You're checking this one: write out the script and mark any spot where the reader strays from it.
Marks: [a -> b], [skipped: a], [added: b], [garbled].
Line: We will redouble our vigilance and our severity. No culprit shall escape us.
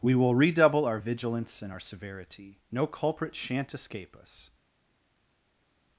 We will redouble our vigilance and our severity. No culprit [shall -> shan't] escape us.